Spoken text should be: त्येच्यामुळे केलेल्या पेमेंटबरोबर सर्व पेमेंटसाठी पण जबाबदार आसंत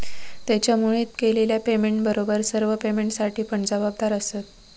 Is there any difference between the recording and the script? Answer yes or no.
no